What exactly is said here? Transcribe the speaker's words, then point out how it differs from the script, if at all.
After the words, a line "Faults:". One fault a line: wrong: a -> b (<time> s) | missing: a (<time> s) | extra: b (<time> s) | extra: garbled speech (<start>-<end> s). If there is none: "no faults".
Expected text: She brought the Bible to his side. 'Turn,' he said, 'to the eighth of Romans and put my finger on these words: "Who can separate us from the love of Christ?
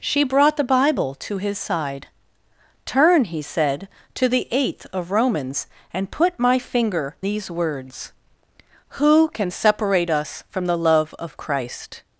She brought the Bible to his side. 'Turn,' he said, 'to the eighth of Romans and put my finger these words: "Who can separate us from the love of Christ?
Faults:
missing: on (7.2 s)